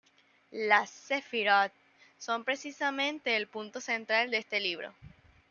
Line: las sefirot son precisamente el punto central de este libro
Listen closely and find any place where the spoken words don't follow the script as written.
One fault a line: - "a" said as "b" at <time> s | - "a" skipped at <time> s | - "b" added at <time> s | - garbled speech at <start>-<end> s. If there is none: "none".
none